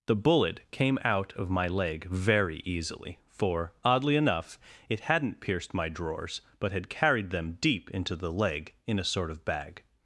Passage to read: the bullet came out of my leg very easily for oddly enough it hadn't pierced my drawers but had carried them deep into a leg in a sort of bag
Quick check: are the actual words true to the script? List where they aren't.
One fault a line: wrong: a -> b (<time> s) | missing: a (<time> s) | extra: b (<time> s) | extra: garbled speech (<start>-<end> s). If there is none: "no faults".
wrong: a -> the (8.2 s)